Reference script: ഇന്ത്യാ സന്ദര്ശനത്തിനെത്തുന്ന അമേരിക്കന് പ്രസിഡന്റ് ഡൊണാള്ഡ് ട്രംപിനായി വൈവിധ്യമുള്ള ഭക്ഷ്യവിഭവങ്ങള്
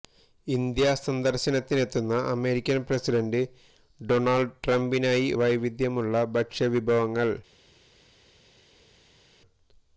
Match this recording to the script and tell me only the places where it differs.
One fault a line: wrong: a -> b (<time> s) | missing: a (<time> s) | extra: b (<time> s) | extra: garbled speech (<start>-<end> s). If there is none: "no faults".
no faults